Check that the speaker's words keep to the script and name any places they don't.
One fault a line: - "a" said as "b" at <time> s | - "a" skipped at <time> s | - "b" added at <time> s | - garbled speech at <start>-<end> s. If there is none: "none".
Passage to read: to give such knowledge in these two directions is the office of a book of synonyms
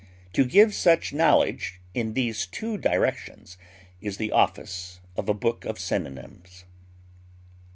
none